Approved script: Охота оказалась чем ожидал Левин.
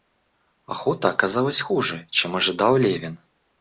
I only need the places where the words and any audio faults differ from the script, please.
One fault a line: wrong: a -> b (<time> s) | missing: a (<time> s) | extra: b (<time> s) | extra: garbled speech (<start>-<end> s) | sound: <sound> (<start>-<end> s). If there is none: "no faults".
extra: хуже (1.6 s)